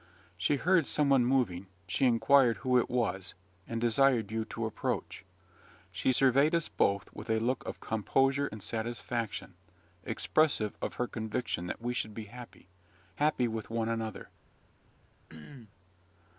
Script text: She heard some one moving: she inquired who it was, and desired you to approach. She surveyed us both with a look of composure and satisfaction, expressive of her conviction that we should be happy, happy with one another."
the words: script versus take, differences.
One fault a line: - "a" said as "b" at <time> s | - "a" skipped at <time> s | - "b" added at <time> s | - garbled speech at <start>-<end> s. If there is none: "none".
none